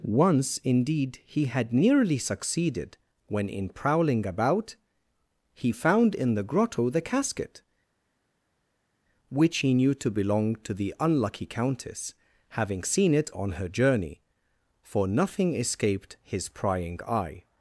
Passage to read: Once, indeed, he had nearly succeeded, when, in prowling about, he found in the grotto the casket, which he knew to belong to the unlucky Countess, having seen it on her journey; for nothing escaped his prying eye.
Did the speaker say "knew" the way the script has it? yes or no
yes